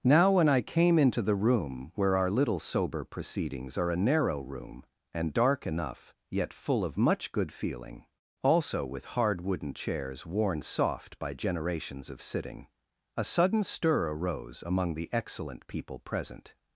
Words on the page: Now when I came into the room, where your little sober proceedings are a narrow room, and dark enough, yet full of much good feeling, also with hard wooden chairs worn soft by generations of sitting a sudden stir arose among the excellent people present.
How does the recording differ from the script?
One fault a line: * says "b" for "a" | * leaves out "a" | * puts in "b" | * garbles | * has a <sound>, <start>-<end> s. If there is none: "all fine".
* says "our" for "your"